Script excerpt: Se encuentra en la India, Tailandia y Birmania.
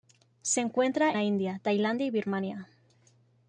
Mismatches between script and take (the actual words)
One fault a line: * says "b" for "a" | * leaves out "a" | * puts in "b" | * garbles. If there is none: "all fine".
* leaves out "en"